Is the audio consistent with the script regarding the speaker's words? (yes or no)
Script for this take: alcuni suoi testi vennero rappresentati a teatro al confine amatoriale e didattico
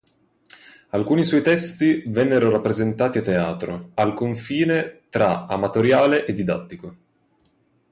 no